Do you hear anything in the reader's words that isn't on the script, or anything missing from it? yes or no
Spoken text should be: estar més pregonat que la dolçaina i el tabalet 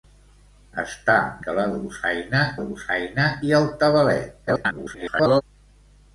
yes